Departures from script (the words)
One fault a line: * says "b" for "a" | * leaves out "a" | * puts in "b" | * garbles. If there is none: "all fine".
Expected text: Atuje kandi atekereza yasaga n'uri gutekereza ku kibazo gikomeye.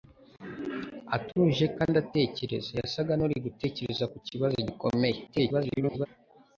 * garbles